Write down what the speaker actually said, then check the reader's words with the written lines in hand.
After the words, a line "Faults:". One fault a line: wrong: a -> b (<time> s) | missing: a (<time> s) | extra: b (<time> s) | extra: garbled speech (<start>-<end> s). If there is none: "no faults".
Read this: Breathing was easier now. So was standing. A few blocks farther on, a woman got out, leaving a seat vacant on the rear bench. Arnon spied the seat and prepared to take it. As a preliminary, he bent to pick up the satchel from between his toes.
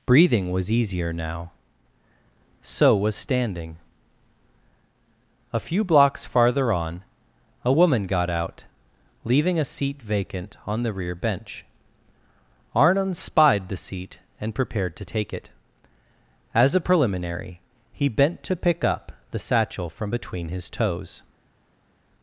Breathing was easier now. So was standing. A few blocks farther on, a woman got out, leaving a seat vacant on the rear bench. Arnon spied the seat and prepared to take it. As a preliminary, he bent to pick up the satchel from between his toes.
Faults:
no faults